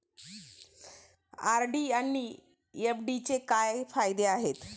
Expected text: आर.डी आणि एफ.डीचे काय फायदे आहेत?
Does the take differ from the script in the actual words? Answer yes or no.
no